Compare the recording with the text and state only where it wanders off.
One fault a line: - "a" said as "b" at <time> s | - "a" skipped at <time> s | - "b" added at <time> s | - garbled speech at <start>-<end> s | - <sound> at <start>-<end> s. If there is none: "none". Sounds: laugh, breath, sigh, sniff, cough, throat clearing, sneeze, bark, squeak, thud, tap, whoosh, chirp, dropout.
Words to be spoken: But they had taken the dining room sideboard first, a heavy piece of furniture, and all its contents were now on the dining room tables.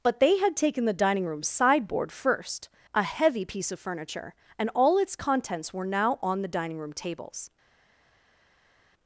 none